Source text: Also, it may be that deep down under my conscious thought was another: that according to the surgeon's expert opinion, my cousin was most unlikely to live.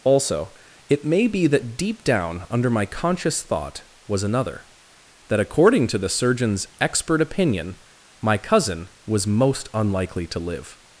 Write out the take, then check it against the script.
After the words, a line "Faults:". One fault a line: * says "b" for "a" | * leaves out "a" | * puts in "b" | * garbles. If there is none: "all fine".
Also, it may be that deep down under my conscious thought was another: that according to the surgeon's expert opinion, my cousin was most unlikely to live.
Faults:
all fine